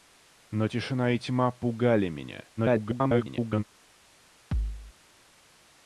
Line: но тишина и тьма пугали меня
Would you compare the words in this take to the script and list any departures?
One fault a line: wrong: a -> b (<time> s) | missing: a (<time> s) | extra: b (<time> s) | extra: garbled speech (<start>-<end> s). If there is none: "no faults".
extra: garbled speech (2.6-3.6 s)